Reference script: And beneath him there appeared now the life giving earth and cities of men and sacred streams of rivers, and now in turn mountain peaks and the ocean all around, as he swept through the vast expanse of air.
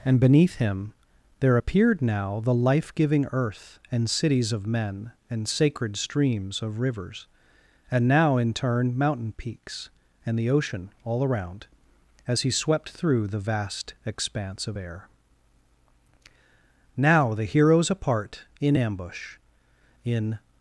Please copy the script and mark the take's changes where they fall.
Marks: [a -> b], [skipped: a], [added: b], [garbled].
And beneath him there appeared now the life giving earth and cities of men and sacred streams of rivers, and now in turn mountain peaks and the ocean all around, as he swept through the vast expanse of air. [added: Now the heroes apart in ambush in]